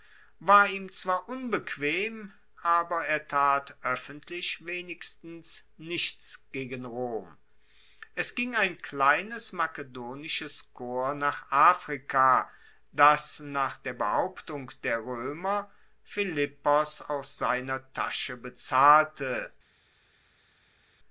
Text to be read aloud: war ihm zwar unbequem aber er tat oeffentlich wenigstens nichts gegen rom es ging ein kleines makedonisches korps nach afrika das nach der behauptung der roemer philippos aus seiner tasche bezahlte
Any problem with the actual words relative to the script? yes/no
no